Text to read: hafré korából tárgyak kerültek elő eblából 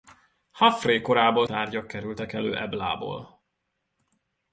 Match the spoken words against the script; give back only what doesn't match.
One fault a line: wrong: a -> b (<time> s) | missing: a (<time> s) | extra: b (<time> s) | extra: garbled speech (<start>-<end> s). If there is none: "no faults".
no faults